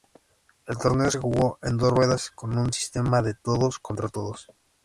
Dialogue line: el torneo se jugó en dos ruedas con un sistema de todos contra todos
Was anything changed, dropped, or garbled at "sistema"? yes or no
no